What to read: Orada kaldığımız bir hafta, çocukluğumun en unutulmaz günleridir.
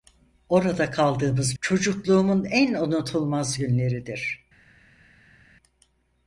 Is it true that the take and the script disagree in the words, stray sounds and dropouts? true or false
true